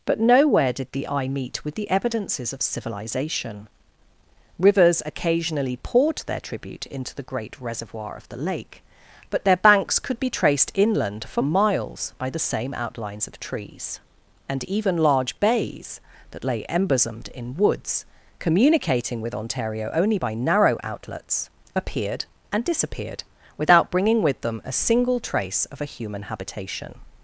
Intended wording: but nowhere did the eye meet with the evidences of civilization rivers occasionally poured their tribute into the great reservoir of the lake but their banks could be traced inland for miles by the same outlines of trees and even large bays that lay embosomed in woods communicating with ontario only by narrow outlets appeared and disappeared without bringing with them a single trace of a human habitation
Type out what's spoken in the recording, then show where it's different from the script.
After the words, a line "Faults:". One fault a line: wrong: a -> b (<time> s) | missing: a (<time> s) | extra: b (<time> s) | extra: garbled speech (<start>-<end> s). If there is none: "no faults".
but nowhere did the eye meet with the evidences of civilization rivers occasionally poured their tribute into the great reservoir of the lake but their banks could be traced inland for miles by the same outlines of trees and even large bays that lay embosomed in woods communicating with ontario only by narrow outlets appeared and disappeared without bringing with them a single trace of a human habitation
Faults:
no faults